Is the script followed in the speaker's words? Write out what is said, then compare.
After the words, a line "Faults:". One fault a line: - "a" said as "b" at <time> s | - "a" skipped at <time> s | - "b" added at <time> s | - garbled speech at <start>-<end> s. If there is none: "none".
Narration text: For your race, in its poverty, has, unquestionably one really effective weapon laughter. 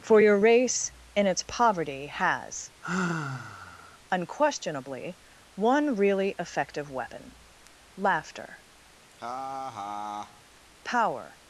For your race, in its poverty, has, unquestionably one really effective weapon laughter. Power
Faults:
- "Power" added at 10.8 s